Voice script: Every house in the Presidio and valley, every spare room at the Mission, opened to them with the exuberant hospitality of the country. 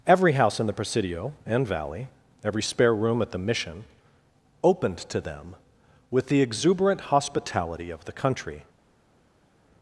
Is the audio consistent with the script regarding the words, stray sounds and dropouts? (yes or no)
yes